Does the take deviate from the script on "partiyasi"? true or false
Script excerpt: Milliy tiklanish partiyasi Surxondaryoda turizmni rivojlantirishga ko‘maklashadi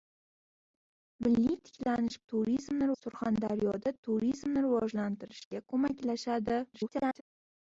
true